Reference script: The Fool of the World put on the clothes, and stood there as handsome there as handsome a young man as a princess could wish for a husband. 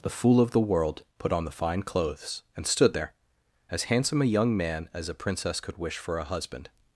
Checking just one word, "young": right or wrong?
right